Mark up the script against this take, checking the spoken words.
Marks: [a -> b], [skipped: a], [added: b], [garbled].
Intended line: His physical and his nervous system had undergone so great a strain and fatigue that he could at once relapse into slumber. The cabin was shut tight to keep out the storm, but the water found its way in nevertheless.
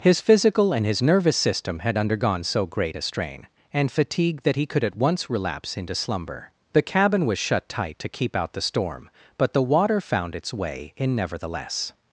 His physical and his nervous system had undergone so great a strain and fatigue that he could at once relapse into slumber. The cabin was shut tight to keep out the storm, but the water found its way in nevertheless.